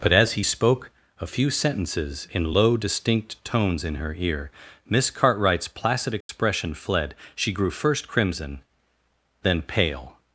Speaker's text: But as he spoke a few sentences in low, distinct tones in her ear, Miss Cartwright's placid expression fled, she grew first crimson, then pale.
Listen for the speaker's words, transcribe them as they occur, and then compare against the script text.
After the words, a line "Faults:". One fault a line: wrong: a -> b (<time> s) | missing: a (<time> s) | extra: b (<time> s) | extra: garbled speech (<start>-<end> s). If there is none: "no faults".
But as he spoke a few sentences in low, distinct tones in her ear, Miss Cartwright's placid expression fled, she grew first crimson, then pale.
Faults:
no faults